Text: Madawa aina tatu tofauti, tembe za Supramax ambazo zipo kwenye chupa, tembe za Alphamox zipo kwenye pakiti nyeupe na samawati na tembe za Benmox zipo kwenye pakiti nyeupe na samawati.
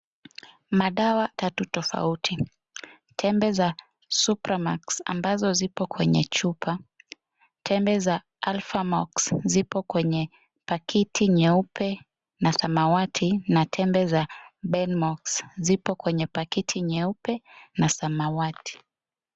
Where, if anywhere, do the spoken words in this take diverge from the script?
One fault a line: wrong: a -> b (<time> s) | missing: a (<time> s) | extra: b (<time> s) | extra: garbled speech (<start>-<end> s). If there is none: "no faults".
missing: aina (1.3 s)